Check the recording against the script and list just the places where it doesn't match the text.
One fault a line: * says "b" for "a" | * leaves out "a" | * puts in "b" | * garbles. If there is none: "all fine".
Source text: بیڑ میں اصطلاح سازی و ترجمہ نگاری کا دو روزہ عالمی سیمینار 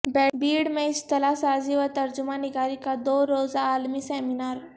all fine